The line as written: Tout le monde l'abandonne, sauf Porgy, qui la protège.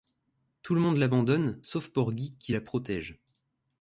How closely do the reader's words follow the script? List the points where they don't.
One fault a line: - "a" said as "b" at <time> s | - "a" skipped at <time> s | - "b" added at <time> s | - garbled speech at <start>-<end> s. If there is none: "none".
none